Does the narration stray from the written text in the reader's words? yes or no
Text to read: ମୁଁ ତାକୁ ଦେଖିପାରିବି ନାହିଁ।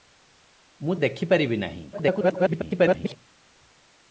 yes